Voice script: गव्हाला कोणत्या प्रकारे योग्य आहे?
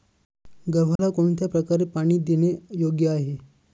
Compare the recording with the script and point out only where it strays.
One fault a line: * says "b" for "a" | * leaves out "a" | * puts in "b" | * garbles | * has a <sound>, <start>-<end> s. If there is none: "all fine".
* has a dropout, 1.0-1.0 s
* puts in "पाणी देणे"